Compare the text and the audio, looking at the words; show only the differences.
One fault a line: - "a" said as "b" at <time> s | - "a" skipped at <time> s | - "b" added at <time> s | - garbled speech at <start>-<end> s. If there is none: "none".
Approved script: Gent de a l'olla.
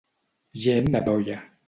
none